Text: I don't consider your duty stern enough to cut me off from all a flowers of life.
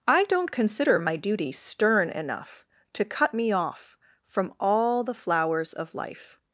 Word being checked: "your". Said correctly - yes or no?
no